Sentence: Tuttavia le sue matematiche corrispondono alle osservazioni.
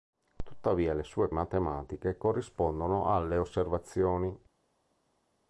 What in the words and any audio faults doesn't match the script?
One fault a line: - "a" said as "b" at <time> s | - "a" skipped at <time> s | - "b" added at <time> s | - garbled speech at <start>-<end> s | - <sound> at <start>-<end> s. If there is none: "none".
none